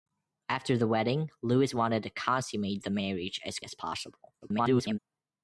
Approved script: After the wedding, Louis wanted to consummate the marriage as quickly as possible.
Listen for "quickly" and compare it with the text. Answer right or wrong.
wrong